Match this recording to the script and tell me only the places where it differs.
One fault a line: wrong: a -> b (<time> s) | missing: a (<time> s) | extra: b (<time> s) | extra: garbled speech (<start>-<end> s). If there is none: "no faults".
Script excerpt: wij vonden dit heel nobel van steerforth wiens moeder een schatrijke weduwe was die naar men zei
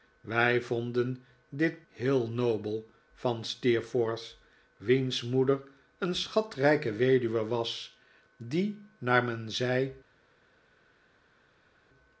no faults